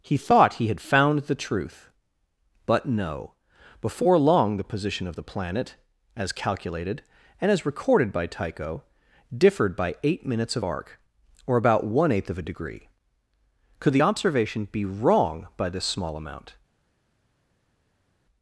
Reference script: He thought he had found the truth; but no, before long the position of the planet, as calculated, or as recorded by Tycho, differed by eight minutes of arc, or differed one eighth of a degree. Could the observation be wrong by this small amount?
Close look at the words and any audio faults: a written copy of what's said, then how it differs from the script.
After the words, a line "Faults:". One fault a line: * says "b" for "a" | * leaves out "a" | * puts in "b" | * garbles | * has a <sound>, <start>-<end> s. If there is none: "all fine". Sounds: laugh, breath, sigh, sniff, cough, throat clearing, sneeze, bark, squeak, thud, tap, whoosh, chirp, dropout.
He thought he had found the truth; but no, before long the position of the planet, as calculated, and as recorded by Tycho, differed by eight minutes of arc, or about one eighth of a degree. Could the observation be wrong by this small amount?
Faults:
* says "and" for "or"
* says "about" for "differed"